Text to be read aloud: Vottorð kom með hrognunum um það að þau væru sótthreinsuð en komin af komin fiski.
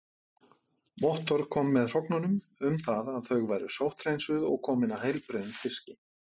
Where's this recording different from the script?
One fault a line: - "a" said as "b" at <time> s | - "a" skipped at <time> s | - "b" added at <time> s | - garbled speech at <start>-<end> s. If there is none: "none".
- "en" said as "og" at 4.5 s
- "komin" said as "heilbrigðum" at 5.1 s